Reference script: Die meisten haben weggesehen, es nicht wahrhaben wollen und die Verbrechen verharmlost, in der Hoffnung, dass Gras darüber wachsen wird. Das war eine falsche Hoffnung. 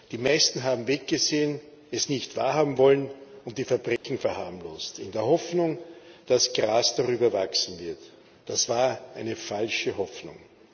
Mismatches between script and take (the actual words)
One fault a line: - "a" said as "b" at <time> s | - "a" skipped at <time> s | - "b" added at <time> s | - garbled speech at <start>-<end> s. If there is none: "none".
none